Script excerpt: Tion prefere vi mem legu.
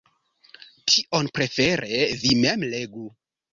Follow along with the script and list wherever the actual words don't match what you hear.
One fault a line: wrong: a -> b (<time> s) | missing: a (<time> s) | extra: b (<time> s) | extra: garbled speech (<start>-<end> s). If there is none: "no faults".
no faults